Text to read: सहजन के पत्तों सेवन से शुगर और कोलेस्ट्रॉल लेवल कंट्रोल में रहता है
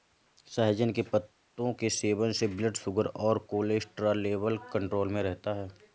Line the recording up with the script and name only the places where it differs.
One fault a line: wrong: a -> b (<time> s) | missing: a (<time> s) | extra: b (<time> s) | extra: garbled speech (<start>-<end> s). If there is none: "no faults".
extra: के (1.7 s)
extra: ब्लड (2.5 s)